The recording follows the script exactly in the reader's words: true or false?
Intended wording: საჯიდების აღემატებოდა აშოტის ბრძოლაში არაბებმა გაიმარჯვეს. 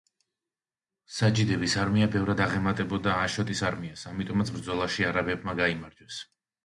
false